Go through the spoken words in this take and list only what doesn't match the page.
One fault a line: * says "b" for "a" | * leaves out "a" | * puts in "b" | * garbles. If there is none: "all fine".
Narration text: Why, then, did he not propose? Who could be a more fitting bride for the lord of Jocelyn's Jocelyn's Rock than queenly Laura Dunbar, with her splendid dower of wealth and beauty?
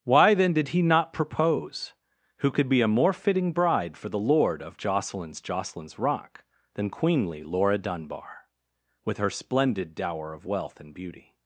all fine